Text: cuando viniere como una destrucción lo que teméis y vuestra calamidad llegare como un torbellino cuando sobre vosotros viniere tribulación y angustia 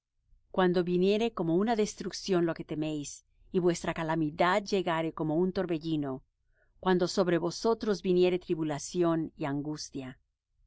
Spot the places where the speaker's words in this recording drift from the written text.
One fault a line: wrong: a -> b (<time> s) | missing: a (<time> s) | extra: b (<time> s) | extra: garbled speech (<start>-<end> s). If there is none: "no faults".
no faults